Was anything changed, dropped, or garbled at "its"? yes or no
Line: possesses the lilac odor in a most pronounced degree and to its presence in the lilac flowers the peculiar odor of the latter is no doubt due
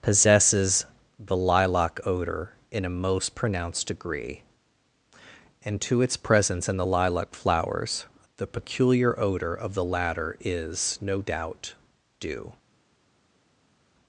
no